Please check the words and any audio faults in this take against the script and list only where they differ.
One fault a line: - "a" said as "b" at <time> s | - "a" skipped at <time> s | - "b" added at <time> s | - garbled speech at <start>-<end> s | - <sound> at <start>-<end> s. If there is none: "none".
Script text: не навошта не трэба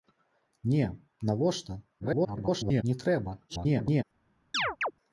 - garbled speech at 2.0-2.8 s
- garbled speech at 3.5-4.0 s
- chirp at 4.5-4.9 s